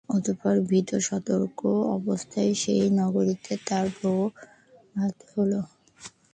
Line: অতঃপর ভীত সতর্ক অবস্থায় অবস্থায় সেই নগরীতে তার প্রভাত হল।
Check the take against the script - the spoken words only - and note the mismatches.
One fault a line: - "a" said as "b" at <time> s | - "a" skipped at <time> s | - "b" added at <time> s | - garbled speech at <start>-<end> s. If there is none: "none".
- "অবস্থায়" skipped at 2.5 s